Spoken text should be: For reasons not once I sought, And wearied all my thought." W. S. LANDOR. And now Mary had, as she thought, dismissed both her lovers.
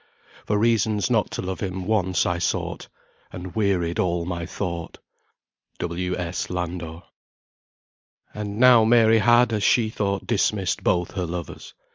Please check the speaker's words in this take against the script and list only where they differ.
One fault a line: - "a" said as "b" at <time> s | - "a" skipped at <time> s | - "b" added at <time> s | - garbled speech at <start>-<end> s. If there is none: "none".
- "to love him" added at 1.3 s